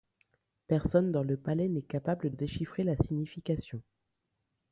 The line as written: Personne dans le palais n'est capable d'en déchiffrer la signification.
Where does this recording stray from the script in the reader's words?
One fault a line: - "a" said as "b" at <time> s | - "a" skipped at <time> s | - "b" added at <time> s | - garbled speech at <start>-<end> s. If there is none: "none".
- "d'en" skipped at 2.3 s